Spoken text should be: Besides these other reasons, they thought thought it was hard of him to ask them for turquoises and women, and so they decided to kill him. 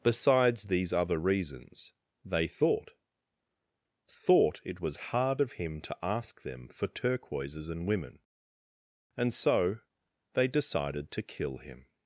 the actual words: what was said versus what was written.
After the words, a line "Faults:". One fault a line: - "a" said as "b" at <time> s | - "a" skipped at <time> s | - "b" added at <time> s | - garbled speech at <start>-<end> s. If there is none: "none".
Besides these other reasons, they thought thought it was hard of him to ask them for turquoises and women, and so they decided to kill him.
Faults:
none